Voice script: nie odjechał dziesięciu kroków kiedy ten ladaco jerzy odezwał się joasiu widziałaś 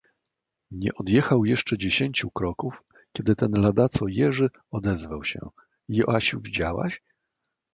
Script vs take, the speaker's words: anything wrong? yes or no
yes